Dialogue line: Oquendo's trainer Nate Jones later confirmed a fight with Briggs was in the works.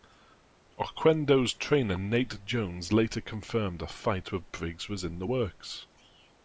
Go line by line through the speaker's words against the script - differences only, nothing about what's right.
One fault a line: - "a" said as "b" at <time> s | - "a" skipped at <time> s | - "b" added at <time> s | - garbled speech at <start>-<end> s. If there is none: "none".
none